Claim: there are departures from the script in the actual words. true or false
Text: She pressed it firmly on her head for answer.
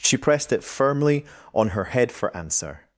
false